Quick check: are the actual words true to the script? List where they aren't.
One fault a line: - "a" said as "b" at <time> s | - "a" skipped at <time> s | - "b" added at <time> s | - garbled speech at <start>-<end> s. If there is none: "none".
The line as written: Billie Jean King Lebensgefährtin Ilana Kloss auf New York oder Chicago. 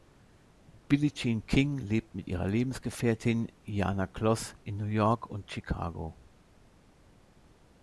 - "lebt mit ihrer" added at 1.8 s
- "auf" said as "in" at 4.6 s
- "oder" said as "und" at 5.3 s